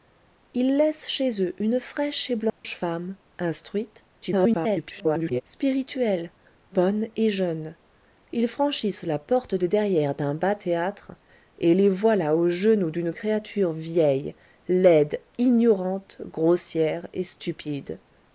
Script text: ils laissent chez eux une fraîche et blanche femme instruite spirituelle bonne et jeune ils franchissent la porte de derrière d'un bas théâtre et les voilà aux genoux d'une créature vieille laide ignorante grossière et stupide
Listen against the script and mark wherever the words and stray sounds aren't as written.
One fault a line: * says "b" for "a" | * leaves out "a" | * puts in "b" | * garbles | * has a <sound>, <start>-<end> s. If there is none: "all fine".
* has a dropout, 2.5-2.6 s
* garbles